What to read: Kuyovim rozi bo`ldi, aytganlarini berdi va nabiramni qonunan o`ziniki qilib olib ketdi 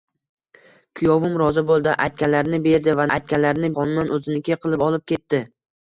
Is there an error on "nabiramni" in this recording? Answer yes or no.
yes